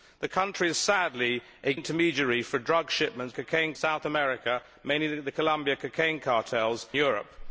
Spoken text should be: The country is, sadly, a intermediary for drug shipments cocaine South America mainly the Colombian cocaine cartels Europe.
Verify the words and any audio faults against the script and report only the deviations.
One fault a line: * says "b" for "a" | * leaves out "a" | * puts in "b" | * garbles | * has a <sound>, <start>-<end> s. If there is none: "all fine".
all fine